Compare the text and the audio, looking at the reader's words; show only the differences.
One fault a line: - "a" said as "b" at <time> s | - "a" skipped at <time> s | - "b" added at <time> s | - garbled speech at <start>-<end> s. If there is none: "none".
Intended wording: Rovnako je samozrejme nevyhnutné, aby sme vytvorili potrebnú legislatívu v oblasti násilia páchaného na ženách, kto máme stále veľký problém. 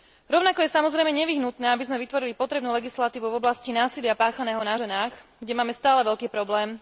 - "kto" said as "kde" at 5.4 s